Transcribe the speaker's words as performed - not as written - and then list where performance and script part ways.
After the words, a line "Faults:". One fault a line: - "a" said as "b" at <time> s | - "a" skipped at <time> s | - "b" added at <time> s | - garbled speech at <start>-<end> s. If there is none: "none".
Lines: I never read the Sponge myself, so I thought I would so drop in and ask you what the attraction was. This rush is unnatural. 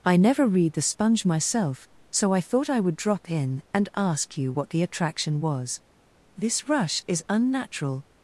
I never read the Sponge myself, so I thought I would drop in and ask you what the attraction was. This rush is unnatural.
Faults:
- "so" skipped at 3.0 s